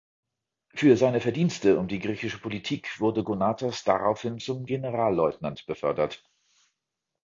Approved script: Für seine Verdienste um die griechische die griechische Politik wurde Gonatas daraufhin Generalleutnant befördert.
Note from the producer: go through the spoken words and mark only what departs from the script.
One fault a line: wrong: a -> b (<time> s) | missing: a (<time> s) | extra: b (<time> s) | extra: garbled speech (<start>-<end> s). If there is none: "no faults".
missing: die griechische (2.4 s)
extra: zum (4.4 s)